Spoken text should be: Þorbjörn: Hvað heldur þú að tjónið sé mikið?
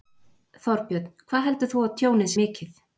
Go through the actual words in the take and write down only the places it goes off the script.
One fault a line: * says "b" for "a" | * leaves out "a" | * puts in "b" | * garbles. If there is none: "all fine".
* leaves out "sé"